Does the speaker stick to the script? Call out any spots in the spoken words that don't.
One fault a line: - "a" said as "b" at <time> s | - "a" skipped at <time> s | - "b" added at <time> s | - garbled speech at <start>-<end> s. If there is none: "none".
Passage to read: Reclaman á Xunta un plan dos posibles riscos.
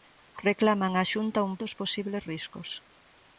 - "plan" skipped at 1.5 s